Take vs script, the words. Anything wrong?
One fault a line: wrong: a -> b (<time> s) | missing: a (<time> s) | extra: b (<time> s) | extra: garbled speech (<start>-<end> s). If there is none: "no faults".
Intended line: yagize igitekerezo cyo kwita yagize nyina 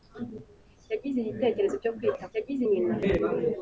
no faults